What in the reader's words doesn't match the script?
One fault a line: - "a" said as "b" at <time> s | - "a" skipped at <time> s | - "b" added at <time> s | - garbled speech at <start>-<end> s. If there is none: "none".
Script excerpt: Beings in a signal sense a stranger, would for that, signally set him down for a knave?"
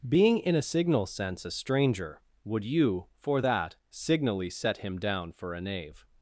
- "Beings" said as "Being" at 0.1 s
- "you" added at 2.6 s